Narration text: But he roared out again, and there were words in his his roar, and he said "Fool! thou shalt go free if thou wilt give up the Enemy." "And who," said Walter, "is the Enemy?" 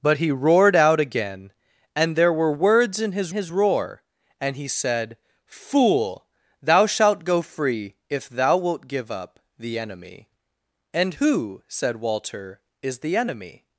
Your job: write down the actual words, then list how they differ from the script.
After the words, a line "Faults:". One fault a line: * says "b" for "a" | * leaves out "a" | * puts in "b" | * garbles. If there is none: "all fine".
But he roared out again, and there were words in his his roar, and he said "Fool! thou shalt go free if thou wilt give up the Enemy." "And who," said Walter, "is the Enemy?"
Faults:
all fine